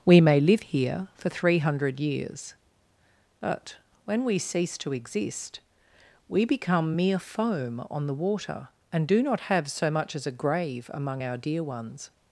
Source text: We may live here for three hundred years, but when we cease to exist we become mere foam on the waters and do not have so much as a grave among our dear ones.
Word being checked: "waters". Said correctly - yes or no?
no